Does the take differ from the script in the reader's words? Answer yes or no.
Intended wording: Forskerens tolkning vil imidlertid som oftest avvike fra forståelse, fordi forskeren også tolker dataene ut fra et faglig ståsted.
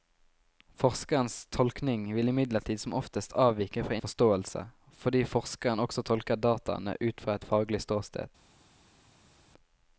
no